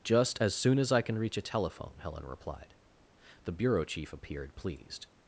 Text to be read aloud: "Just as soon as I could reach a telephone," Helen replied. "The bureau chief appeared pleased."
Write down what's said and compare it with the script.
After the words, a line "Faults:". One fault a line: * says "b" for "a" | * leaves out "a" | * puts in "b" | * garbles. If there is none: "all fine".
"Just as soon as I can reach a telephone," Helen replied. "The bureau chief appeared pleased."
Faults:
* says "can" for "could"